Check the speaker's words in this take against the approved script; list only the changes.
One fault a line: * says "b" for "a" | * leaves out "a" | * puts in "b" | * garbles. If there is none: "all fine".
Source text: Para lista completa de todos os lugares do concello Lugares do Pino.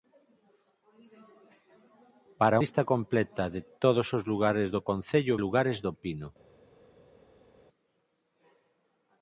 all fine